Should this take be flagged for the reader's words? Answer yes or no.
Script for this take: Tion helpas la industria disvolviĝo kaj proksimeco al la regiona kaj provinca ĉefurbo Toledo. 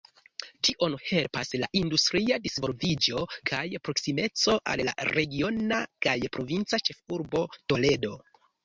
no